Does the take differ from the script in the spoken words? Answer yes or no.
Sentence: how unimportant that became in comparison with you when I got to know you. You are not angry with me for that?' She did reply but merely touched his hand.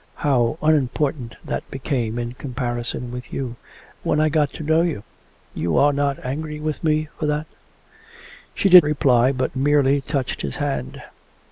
no